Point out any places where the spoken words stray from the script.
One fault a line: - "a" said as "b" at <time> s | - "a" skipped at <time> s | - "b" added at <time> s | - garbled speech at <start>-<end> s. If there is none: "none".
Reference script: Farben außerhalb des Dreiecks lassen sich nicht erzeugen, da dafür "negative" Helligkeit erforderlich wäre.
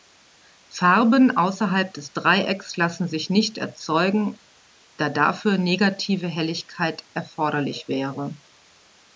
none